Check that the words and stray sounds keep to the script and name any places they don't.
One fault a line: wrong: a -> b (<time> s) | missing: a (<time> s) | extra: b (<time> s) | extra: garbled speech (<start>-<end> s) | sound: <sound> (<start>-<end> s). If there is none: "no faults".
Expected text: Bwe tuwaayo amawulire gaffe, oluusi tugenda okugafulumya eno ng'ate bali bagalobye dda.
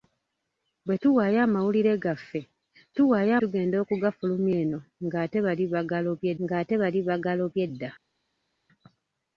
wrong: oluusi -> tuwaayo (3.0 s)
extra: ng'ate bali bagalobye (6.4 s)